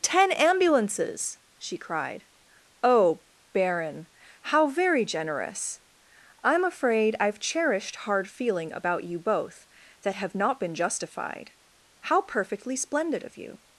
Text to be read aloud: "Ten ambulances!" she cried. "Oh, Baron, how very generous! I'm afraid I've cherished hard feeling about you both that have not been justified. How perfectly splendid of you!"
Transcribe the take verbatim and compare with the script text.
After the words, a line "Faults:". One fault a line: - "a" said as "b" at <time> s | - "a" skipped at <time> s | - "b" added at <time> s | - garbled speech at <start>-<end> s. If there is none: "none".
"Ten ambulances!" she cried. "Oh, Baron, how very generous! I'm afraid I've cherished hard feeling about you both that have not been justified. How perfectly splendid of you!"
Faults:
none